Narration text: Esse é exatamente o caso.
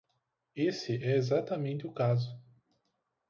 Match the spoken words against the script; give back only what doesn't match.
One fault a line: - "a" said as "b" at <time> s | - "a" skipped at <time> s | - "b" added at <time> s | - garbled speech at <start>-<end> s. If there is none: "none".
none